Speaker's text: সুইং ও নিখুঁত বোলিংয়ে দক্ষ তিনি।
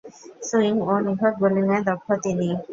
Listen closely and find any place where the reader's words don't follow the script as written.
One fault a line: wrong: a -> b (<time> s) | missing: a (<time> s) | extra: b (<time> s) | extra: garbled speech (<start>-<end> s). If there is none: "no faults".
no faults